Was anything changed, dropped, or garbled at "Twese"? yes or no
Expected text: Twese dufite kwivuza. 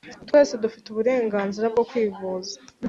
no